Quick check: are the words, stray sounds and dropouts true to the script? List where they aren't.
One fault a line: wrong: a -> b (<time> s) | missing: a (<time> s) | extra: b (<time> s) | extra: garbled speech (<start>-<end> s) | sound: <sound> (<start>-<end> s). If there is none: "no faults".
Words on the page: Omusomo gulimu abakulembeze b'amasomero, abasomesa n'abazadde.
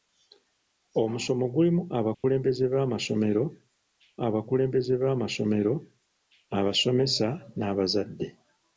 sound: dropout (2.1-2.2 s)
extra: abakulembeze b'amasomero (4.3 s)